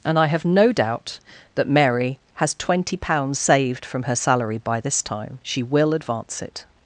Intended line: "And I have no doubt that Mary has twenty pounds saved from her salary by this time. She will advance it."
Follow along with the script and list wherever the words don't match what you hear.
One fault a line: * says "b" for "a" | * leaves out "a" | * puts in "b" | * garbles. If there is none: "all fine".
all fine